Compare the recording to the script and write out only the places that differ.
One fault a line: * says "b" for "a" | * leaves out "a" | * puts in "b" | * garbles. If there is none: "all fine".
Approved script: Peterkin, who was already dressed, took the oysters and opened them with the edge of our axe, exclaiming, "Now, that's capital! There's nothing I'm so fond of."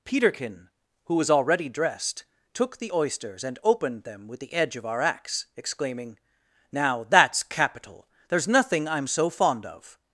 all fine